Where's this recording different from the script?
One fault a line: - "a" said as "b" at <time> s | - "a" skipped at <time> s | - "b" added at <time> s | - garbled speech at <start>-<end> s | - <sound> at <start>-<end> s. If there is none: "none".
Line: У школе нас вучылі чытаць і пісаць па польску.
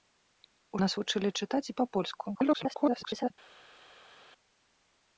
- "школе" skipped at 0.8 s
- "пісаць" skipped at 1.8 s
- garbled speech at 2.3-3.3 s